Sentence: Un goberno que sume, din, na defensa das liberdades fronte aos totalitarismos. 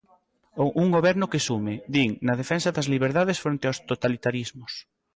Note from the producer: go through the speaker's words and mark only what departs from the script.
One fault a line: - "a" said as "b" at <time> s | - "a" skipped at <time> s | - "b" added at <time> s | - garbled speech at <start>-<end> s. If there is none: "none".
none